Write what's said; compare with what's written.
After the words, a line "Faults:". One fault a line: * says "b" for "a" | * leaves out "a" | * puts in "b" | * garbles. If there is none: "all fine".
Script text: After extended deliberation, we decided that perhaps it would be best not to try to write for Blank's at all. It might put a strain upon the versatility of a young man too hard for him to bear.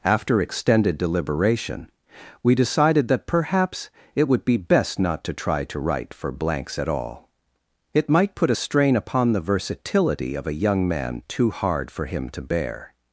After extended deliberation, we decided that perhaps it would be best not to try to write for Blank's at all. It might put a strain upon the versatility of a young man too hard for him to bear.
Faults:
all fine